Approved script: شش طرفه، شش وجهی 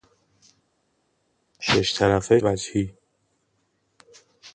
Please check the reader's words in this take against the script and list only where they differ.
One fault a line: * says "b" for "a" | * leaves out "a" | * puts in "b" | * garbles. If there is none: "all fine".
* leaves out "شش"